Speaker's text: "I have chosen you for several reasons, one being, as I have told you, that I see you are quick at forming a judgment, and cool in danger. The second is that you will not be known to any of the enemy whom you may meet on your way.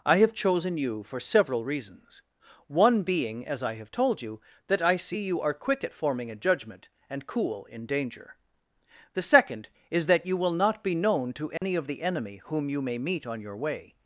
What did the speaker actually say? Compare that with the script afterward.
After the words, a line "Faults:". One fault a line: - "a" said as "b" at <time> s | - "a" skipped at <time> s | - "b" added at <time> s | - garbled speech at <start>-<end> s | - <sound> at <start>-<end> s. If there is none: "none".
"I have chosen you for several reasons, one being, as I have told you, that I see you are quick at forming a judgment, and cool in danger. The second is that you will not be known to any of the enemy whom you may meet on your way.
Faults:
- dropout at 11.6-11.6 s